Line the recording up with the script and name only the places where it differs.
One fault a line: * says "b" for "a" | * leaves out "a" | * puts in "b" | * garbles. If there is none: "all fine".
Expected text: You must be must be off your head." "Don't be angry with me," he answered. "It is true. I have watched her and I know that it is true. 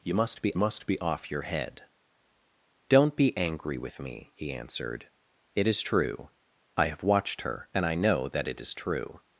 all fine